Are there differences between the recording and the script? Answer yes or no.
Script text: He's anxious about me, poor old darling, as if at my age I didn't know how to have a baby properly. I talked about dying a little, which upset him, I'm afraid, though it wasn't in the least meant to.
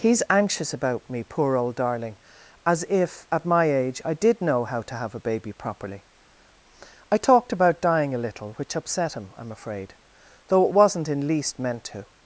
yes